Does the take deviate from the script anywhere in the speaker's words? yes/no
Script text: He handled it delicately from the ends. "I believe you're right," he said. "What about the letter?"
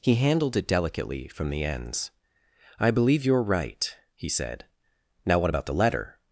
yes